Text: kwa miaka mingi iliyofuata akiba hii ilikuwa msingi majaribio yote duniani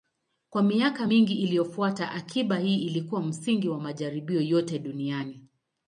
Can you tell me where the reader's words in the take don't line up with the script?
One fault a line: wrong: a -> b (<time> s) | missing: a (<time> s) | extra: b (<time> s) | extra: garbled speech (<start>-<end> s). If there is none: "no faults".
extra: wa (3.7 s)